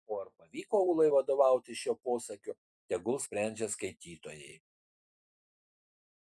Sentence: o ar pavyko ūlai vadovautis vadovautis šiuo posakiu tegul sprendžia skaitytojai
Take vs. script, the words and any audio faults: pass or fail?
fail